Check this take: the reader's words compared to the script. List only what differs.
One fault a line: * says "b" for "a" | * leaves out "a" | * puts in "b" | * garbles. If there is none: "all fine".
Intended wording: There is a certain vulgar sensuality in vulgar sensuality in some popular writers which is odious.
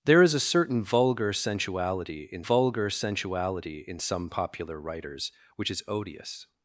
all fine